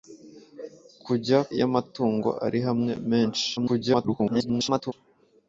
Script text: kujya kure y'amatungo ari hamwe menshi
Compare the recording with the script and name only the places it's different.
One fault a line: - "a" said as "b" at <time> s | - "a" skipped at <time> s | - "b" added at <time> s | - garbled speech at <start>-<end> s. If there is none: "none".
- "kure" skipped at 1.4 s
- garbled speech at 3.6-4.9 s